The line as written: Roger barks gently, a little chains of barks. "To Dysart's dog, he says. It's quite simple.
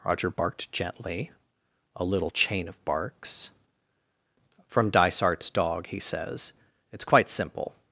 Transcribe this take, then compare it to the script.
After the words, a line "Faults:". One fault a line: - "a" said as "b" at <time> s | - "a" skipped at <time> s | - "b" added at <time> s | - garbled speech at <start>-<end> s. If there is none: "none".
Roger barked gently, a little chain of barks. "From Dysart's dog, he says. It's quite simple.
Faults:
- "barks" said as "barked" at 0.3 s
- "chains" said as "chain" at 2.3 s
- "To" said as "From" at 4.6 s